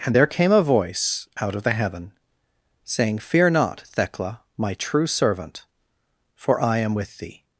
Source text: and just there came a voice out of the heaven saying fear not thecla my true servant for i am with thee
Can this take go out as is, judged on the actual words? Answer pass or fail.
fail